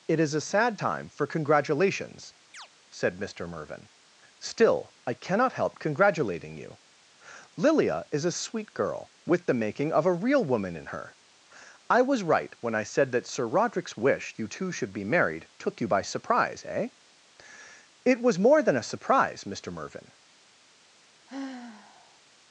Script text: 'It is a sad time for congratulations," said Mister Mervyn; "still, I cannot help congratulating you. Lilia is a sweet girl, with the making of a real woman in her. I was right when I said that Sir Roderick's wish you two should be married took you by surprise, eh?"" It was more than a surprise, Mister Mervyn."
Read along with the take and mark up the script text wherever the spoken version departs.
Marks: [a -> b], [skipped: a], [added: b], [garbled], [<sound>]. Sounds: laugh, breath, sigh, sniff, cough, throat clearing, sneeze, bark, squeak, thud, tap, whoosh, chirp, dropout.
'It is a sad time for congratulations," [chirp] said Mister Mervyn; "still, I cannot help congratulating you. Lilia is a sweet girl, with the making of a real woman in her. I was right when I said that Sir Roderick's wish you two should be married took you by surprise, eh?"" It was more than a surprise, Mister Mervyn." [sigh]